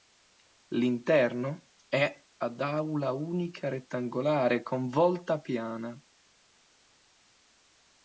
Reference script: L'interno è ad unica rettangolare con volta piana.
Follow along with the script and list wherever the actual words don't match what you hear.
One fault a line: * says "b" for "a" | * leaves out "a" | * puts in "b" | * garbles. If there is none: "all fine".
* puts in "aula"